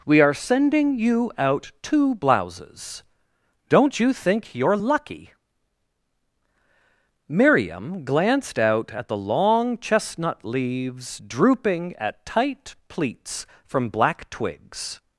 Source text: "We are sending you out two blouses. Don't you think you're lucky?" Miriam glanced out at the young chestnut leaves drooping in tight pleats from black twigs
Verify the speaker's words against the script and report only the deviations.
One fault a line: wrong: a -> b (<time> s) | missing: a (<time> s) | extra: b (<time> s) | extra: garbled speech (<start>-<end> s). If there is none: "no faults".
wrong: young -> long (9.2 s)
wrong: in -> at (12.0 s)